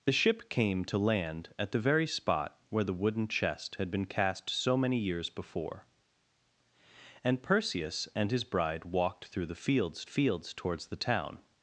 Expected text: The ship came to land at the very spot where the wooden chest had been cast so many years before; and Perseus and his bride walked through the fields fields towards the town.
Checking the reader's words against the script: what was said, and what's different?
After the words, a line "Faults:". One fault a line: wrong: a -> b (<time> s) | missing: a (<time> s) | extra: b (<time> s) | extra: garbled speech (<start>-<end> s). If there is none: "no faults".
The ship came to land at the very spot where the wooden chest had been cast so many years before; and Perseus and his bride walked through the fields fields towards the town.
Faults:
no faults